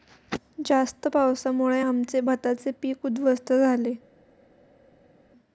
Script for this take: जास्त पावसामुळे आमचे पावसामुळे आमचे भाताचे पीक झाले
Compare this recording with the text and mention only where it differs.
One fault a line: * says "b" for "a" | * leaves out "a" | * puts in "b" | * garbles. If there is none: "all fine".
* leaves out "पावसामुळे आमचे"
* puts in "उध्वस्त"